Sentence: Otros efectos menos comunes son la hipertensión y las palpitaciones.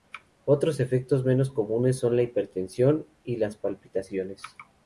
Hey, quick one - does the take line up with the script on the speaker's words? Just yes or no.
yes